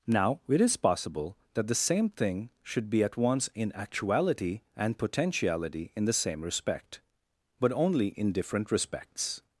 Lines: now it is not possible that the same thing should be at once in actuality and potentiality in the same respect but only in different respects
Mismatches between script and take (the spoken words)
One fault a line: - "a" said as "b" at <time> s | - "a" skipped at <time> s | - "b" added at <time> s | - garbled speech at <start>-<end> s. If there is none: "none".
- "not" skipped at 0.8 s